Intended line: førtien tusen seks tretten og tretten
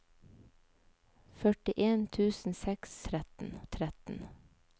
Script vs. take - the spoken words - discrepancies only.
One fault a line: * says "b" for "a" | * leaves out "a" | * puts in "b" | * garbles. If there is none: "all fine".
all fine